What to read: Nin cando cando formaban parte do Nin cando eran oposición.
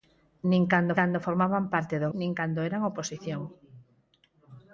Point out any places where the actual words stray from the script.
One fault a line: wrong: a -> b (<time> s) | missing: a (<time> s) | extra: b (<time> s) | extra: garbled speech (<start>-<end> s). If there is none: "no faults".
no faults